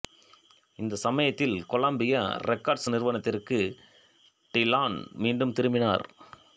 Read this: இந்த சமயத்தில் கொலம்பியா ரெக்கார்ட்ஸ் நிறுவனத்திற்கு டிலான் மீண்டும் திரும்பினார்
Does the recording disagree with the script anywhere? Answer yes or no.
no